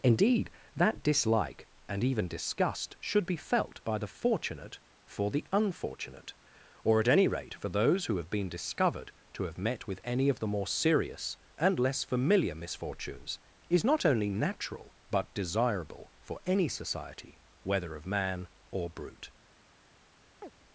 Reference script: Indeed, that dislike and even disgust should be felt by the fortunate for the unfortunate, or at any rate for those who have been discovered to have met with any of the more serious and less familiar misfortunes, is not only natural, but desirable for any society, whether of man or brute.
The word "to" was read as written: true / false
true